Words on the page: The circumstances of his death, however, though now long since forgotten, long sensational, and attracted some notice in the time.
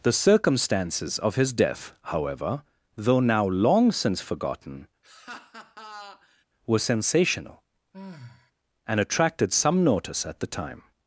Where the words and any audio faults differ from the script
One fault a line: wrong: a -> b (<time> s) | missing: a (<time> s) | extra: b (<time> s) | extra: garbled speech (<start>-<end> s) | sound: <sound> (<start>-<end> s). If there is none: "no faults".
sound: laugh (5.0-6.4 s)
wrong: long -> were (6.6 s)
sound: sigh (7.9-8.5 s)
wrong: in -> at (10.3 s)